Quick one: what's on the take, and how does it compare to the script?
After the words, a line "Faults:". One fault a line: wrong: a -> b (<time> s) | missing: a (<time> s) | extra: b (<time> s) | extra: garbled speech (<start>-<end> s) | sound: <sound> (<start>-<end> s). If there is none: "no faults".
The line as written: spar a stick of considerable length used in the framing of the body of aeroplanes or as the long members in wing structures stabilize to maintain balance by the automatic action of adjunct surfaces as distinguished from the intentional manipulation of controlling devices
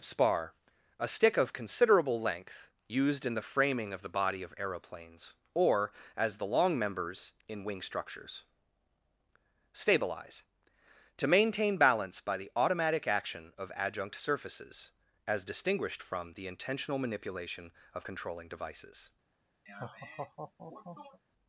spar a stick of considerable length used in the framing of the body of aeroplanes or as the long members in wing structures stabilize to maintain balance by the automatic action of adjunct surfaces as distinguished from the intentional manipulation of controlling devices
Faults:
sound: laugh (19.7-21.2 s)